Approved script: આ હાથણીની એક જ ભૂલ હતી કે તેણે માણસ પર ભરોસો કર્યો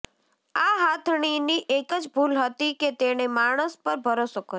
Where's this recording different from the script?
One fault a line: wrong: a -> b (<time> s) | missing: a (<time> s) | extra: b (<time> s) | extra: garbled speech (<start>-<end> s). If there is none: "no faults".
no faults